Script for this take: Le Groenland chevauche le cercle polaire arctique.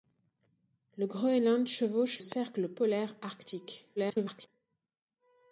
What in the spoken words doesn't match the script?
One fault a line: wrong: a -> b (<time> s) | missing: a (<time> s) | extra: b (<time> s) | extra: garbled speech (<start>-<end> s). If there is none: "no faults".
missing: le (2.2 s)
extra: garbled speech (4.0-4.5 s)